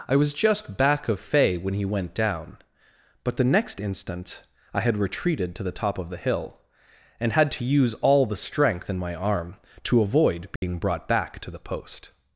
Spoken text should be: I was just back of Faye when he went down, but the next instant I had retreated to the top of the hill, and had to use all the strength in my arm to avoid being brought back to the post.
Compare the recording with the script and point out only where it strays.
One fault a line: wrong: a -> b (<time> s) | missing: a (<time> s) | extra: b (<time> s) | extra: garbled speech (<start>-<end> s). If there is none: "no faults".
no faults